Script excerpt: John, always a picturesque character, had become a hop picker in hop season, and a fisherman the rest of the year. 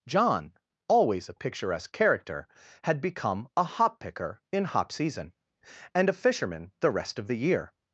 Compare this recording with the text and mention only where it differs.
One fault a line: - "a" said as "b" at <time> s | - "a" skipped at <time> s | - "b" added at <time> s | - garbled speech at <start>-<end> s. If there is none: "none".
none